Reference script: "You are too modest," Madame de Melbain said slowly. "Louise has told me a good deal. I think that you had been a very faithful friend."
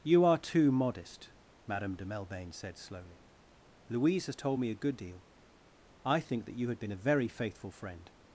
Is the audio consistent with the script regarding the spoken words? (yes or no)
yes